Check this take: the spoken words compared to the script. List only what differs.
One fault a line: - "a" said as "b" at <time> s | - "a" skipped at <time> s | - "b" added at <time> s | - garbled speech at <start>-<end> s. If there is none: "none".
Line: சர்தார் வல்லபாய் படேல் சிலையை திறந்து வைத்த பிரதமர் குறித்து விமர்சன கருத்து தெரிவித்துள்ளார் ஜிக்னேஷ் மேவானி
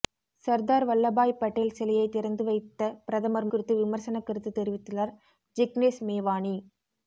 none